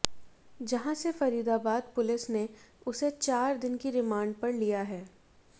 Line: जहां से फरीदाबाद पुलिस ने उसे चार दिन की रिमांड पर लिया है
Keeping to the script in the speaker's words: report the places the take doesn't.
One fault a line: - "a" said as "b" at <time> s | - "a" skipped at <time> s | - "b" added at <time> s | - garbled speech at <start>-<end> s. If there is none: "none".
none